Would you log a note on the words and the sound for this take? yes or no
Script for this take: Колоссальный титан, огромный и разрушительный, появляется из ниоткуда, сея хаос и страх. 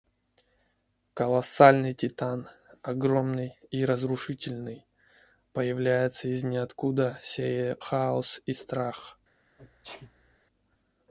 yes